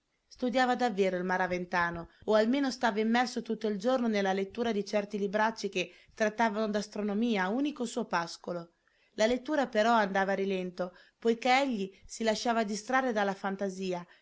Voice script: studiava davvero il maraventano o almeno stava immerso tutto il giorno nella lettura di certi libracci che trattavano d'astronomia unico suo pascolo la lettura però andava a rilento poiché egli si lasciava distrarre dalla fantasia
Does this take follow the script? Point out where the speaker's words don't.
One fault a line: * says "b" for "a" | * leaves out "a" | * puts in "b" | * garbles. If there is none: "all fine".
all fine